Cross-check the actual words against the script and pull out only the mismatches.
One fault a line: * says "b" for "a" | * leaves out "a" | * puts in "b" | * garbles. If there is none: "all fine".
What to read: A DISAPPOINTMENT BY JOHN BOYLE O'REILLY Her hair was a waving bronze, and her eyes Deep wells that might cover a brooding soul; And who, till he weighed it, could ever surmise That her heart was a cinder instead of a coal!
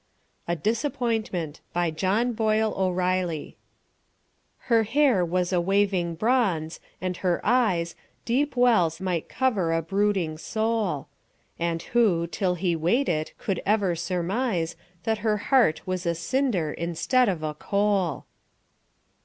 * leaves out "that"